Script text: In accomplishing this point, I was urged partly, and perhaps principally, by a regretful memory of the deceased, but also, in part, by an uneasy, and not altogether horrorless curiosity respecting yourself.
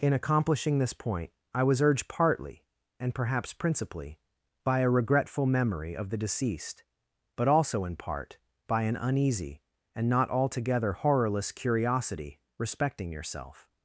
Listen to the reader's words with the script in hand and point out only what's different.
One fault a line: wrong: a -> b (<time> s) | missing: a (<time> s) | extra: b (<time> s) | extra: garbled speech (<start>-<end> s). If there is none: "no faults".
no faults